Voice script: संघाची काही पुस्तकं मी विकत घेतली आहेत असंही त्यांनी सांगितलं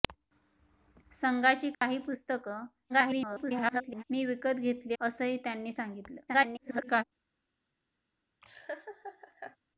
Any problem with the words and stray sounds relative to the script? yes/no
yes